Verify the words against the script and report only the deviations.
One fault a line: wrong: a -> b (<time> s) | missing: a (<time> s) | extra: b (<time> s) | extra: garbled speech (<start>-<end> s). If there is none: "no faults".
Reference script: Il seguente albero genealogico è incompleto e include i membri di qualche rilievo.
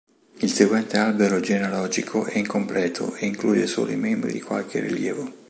extra: solo (3.7 s)